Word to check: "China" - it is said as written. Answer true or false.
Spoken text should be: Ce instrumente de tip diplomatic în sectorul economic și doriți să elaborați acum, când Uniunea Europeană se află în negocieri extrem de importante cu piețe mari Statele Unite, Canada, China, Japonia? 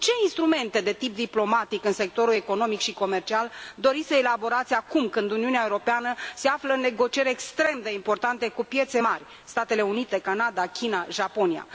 true